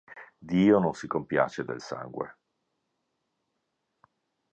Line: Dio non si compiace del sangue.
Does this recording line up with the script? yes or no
yes